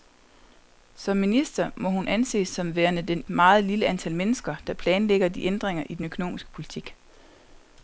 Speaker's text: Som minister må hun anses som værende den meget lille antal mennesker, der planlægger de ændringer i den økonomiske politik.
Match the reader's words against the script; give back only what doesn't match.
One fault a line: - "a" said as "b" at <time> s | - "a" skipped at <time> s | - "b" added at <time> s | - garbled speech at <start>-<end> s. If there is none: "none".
none